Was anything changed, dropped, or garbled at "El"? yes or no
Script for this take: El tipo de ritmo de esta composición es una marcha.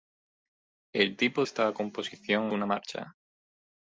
no